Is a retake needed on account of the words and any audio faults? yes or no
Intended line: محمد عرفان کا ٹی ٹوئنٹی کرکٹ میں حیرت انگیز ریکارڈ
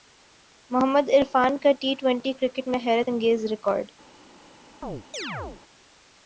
yes